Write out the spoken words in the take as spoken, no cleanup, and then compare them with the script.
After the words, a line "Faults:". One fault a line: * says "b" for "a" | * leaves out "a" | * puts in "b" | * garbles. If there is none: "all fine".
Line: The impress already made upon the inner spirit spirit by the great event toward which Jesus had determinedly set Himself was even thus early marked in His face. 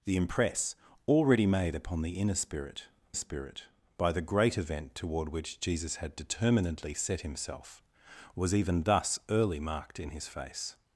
The impress already made upon the inner spirit spirit by the great event toward which Jesus had determinedly set Himself was even thus early marked in His face.
Faults:
all fine